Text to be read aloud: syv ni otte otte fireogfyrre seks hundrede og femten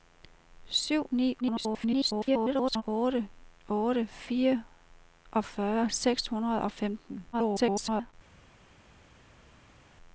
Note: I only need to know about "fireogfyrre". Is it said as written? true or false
true